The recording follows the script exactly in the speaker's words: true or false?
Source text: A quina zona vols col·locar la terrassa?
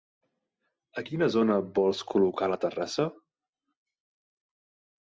true